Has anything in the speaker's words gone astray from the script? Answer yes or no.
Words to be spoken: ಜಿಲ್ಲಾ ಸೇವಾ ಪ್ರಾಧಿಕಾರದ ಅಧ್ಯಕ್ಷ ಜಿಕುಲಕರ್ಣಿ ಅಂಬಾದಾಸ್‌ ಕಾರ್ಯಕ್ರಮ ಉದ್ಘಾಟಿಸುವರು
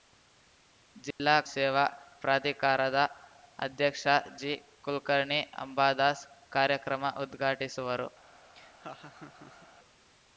no